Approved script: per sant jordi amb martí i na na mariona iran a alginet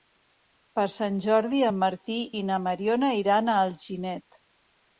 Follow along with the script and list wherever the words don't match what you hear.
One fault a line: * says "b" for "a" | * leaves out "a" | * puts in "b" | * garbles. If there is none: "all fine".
* says "en" for "amb"
* leaves out "na"